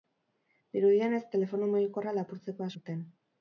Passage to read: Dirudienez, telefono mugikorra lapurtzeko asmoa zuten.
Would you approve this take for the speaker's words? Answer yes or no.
no